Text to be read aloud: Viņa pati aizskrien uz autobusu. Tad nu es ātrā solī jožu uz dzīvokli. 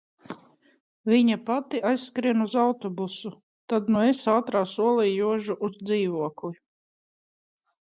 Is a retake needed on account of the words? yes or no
no